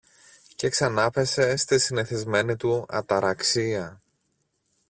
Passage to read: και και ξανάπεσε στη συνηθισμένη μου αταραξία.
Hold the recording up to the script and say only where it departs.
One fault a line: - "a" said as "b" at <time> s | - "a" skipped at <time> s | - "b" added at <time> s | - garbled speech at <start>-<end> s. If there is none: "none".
- "και" skipped at 0.7 s
- "μου" said as "του" at 2.5 s